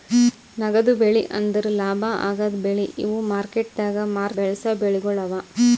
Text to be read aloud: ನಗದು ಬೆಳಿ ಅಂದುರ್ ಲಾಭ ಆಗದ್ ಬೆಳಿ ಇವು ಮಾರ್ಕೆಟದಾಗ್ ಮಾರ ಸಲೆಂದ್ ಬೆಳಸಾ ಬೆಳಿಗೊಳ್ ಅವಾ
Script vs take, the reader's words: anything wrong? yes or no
yes